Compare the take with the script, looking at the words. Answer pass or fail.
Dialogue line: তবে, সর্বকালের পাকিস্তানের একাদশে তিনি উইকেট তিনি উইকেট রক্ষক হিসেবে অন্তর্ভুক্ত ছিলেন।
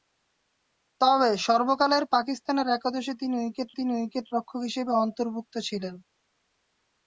pass